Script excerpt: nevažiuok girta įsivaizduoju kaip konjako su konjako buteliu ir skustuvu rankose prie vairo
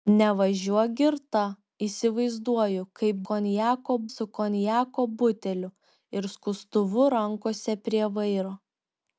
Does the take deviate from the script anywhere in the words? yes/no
no